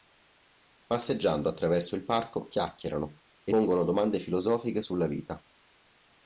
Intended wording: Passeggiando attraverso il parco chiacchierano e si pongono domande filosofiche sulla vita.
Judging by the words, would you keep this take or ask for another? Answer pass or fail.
fail